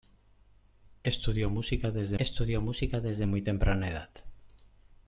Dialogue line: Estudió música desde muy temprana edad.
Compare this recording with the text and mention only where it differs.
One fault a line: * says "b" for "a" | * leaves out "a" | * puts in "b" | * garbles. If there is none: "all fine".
* puts in "estudió música desde"